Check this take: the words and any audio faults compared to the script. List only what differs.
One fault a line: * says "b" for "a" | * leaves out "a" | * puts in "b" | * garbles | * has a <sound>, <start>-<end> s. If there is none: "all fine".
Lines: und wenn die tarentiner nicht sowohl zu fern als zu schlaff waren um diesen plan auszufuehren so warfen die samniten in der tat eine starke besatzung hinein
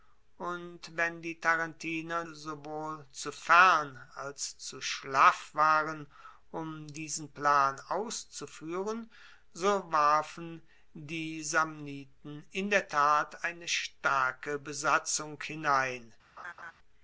* leaves out "nicht"
* has a laugh, 16.4-16.7 s